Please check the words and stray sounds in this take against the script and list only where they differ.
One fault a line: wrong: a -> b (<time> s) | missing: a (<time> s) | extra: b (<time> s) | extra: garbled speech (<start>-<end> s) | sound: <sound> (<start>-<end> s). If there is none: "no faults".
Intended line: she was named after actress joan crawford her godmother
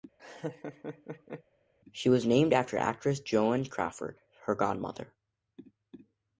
sound: laugh (0.2-1.4 s)